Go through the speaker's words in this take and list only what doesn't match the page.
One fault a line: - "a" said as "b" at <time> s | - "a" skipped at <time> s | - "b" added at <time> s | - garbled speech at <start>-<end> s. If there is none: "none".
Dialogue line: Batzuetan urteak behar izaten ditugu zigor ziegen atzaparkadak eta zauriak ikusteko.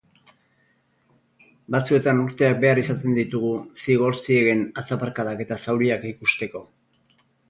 none